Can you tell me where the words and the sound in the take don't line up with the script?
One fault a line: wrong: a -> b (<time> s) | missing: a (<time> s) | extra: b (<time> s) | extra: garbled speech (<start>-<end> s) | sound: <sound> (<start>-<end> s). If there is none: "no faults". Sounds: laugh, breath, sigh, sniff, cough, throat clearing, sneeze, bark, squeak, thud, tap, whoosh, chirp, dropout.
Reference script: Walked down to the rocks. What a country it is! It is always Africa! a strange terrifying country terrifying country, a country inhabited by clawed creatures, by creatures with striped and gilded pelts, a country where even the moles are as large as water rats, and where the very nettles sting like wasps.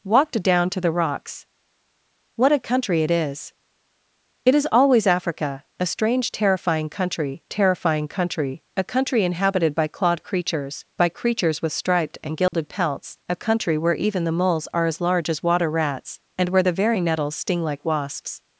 sound: dropout (12.5-12.5 s)